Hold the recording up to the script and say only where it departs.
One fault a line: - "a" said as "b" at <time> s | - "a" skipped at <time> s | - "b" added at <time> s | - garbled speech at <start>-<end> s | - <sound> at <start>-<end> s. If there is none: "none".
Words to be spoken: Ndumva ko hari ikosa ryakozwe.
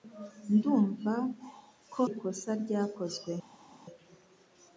- "hari" skipped at 2.0 s